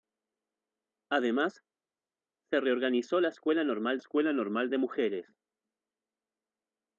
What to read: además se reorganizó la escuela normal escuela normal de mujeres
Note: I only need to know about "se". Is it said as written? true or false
true